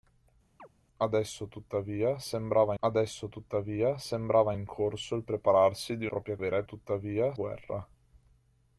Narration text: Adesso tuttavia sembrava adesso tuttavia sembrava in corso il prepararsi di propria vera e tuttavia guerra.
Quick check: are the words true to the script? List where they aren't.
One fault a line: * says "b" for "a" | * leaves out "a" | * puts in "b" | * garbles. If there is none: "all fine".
all fine